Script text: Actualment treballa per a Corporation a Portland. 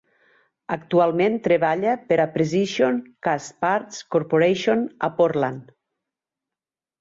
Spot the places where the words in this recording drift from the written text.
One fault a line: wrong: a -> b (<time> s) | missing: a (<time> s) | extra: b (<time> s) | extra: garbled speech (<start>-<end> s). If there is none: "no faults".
extra: Precision Castparts (2.4 s)